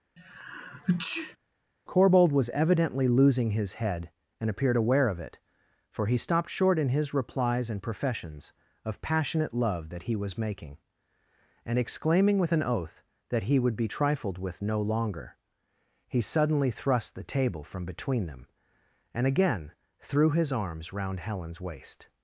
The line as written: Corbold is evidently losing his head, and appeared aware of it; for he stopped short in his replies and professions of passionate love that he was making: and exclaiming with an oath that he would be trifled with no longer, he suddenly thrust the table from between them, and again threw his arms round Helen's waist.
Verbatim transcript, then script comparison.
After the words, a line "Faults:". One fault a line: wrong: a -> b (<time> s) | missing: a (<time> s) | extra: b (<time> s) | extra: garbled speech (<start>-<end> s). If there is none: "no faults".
Corbold was evidently losing his head, and appeared aware of it; for he stopped short in his replies and professions of passionate love that he was making: and exclaiming with an oath that he would be trifled with no longer, he suddenly thrust the table from between them, and again threw his arms round Helen's waist.
Faults:
wrong: is -> was (2.3 s)